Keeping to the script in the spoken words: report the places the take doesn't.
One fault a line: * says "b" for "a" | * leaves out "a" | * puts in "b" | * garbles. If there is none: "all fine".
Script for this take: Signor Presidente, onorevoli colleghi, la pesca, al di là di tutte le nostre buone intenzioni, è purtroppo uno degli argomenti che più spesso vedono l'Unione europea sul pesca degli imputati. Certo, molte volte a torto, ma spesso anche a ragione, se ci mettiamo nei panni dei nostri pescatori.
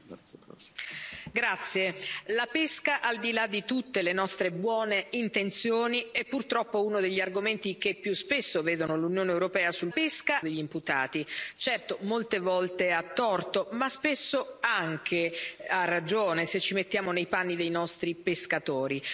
all fine